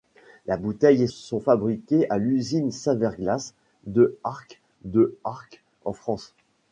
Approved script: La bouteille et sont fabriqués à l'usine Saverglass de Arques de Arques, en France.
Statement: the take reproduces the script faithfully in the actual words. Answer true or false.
true